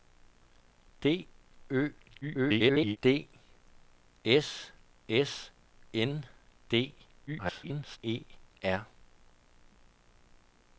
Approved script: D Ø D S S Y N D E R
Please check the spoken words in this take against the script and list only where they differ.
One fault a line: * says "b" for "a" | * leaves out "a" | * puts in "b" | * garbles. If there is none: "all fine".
* garbles
* leaves out "Y"
* garbles